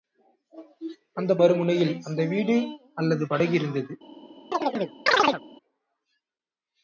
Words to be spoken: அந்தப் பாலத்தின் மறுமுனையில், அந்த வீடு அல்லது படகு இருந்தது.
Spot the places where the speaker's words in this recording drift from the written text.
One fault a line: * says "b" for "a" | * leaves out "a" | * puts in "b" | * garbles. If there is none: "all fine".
* leaves out "பாலத்தின்"